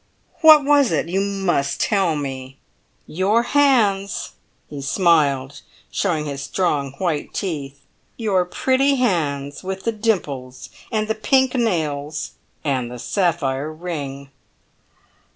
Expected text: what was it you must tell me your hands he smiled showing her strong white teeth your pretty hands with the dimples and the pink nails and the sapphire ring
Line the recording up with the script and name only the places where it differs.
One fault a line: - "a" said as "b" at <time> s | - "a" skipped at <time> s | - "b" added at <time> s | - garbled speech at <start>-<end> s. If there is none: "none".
- "her" said as "his" at 6.2 s